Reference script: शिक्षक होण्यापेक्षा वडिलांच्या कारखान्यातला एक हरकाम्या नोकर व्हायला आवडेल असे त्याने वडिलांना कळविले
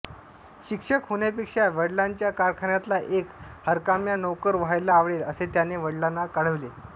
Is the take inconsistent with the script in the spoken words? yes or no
no